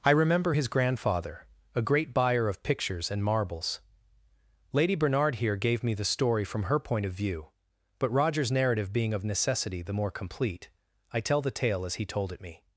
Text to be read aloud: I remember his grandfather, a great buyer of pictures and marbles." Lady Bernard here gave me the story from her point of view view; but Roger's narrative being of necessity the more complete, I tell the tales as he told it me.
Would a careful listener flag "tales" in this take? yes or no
yes